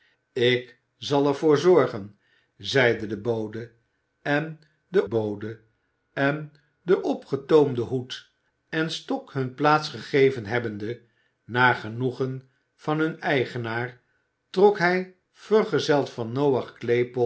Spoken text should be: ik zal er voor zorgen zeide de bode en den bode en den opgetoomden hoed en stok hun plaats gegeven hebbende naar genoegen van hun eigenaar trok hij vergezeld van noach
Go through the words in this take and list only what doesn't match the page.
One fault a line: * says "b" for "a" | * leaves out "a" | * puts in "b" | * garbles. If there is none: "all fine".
all fine